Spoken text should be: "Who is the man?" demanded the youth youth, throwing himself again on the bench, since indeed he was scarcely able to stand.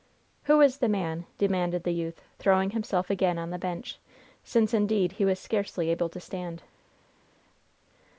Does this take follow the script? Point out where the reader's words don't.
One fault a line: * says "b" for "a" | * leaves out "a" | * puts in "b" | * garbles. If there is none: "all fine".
* leaves out "youth"